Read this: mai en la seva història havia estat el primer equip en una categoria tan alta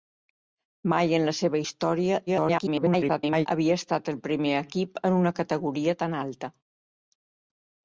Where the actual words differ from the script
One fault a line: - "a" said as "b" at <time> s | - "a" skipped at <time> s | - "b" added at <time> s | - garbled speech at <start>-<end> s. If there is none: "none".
- garbled speech at 2.3-3.5 s